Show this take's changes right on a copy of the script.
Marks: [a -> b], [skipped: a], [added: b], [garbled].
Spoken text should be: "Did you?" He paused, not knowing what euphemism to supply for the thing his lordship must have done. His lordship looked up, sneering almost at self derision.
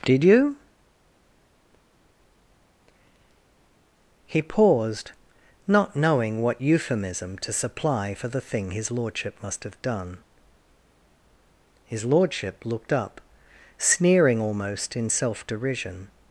"Did you?" He paused, not knowing what euphemism to supply for the thing his lordship must have done. His lordship looked up, sneering almost [at -> in] self derision.